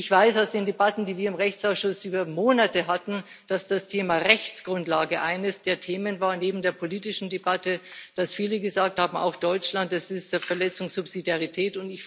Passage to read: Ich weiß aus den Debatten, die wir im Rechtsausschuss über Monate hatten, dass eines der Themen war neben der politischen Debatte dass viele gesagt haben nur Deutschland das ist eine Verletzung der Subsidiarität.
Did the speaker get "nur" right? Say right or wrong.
wrong